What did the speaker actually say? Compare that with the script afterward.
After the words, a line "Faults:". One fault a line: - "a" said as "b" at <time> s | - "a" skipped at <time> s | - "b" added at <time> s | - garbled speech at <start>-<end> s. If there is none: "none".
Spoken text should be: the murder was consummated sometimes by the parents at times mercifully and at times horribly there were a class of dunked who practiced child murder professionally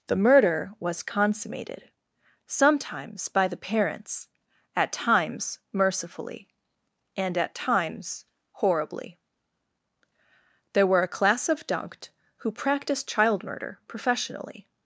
the murder was consummated sometimes by the parents at times mercifully and at times horribly there were a class of dunked who practiced child murder professionally
Faults:
none